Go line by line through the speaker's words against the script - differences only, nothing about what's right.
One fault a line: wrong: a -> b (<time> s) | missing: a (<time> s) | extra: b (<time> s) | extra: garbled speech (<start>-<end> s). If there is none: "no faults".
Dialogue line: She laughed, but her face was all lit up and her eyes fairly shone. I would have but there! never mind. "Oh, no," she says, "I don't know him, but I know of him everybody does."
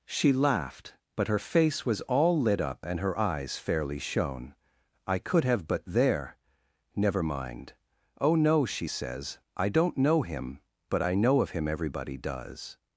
wrong: would -> could (5.2 s)